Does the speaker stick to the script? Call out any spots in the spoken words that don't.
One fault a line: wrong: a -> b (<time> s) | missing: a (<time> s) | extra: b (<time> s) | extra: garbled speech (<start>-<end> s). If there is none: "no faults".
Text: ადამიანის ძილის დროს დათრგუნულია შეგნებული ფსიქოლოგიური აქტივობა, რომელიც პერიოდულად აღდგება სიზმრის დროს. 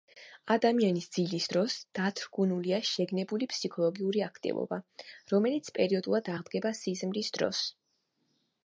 no faults